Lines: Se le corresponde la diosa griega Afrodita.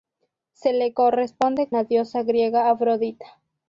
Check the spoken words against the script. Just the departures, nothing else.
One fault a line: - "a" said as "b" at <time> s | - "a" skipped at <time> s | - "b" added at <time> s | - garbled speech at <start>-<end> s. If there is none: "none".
none